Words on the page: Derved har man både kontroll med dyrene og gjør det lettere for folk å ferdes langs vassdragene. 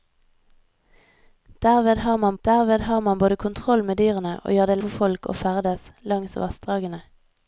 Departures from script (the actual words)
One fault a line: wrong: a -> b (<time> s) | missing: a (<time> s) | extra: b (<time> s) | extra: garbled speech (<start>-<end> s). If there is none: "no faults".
extra: derved har man (2.4 s)
missing: lettere (4.8 s)